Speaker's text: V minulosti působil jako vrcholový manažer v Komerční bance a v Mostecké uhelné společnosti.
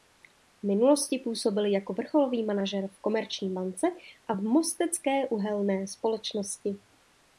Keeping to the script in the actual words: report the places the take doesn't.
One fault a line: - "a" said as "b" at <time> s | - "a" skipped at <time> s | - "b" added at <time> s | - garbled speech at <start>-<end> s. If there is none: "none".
none